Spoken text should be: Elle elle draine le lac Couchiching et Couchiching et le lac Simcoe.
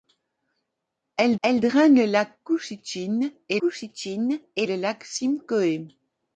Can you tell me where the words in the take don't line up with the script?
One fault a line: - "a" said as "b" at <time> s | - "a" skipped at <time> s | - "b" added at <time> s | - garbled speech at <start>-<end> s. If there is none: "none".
none